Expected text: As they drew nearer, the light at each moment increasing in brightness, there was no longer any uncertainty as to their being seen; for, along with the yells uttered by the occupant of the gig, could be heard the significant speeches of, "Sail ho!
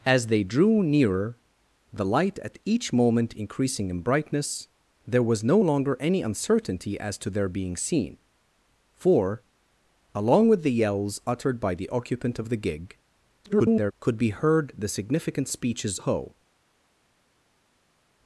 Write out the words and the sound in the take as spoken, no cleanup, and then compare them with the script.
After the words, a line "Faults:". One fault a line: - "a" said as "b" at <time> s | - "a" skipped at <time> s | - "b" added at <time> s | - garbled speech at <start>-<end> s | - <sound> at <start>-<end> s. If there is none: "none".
As they drew nearer, the light at each moment increasing in brightness, there was no longer any uncertainty as to their being seen; for, along with the yells uttered by the occupant of the gig, [garbled] could be heard the significant speeches ho!
Faults:
- garbled speech at 13.4-13.9 s
- "of Sail" skipped at 16.0 s